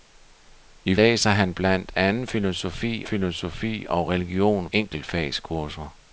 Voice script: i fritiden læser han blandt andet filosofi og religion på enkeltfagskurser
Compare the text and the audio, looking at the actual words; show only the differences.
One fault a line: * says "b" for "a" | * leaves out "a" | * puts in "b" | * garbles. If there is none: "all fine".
* leaves out "fritiden"
* puts in "filosofi"
* leaves out "på"